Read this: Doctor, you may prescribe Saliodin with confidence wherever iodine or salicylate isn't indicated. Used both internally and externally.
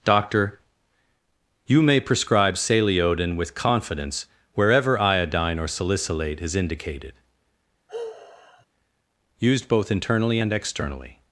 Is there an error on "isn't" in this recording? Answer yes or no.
yes